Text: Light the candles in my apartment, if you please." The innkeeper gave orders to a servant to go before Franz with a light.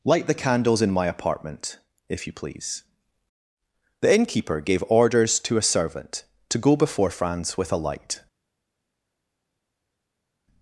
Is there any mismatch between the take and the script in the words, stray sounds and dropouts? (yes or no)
no